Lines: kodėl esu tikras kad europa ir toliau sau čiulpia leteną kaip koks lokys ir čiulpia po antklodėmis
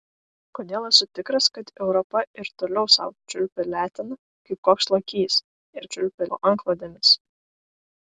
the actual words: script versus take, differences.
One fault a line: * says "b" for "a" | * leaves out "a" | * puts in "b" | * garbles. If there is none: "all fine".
all fine